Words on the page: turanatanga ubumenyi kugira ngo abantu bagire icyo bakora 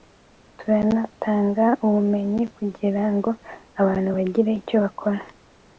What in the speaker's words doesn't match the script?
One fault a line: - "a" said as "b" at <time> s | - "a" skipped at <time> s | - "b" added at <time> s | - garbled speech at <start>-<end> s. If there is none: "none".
none